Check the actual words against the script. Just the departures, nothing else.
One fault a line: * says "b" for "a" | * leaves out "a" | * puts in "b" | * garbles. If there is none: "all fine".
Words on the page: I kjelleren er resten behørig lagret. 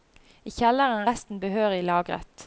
all fine